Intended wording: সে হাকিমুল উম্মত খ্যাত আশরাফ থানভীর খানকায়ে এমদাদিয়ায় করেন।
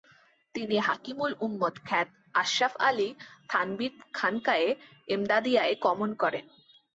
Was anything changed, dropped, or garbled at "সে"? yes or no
yes